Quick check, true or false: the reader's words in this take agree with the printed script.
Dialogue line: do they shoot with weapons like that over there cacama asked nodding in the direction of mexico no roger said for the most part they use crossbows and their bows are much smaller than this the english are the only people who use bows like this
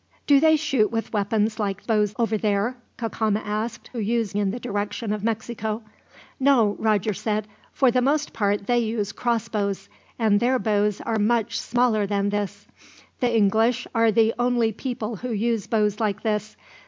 false